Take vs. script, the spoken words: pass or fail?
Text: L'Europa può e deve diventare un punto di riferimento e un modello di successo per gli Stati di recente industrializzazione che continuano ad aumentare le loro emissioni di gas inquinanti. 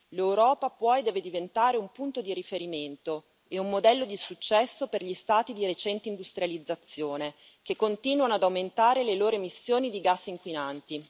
pass